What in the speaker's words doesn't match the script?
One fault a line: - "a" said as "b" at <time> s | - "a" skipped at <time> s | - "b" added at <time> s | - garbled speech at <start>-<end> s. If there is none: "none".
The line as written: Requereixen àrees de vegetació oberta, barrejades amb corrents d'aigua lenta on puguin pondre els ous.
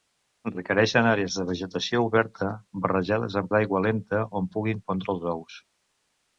- "corrents" skipped at 3.5 s